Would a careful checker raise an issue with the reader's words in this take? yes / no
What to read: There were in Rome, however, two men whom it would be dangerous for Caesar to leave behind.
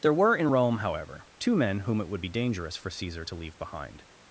no